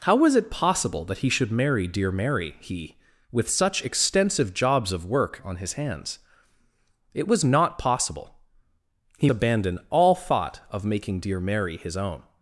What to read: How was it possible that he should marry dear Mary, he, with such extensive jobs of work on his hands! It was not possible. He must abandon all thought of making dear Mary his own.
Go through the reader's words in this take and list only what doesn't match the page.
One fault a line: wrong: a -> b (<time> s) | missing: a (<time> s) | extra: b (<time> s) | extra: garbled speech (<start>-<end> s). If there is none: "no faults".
missing: must (9.3 s)